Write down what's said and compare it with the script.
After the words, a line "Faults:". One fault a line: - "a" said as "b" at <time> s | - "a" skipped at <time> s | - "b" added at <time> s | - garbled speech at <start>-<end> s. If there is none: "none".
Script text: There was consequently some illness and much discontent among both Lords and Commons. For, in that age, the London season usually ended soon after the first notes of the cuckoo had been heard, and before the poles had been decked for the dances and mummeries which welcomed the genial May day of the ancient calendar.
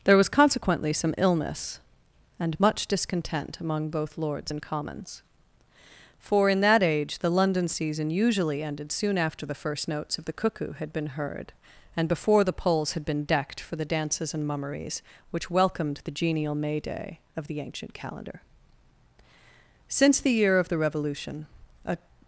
There was consequently some illness and much discontent among both Lords and Commons. For, in that age, the London season usually ended soon after the first notes of the cuckoo had been heard, and before the poles had been decked for the dances and mummeries which welcomed the genial May day of the ancient calendar. Since the year of the Revolution, a
Faults:
- "Since the year of the Revolution a" added at 19.9 s